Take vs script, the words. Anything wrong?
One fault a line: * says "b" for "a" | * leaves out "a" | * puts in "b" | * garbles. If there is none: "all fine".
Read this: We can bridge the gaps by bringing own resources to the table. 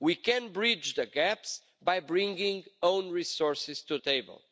* leaves out "the"